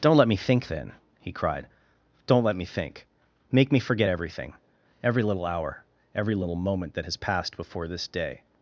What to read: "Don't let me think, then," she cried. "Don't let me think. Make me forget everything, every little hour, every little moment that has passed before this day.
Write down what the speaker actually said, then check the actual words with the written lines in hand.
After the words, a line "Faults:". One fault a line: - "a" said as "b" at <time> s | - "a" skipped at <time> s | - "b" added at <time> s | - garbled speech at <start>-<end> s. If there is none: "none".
"Don't let me think, then," he cried. "Don't let me think. Make me forget everything, every little hour, every little moment that has passed before this day.
Faults:
- "she" said as "he" at 1.2 s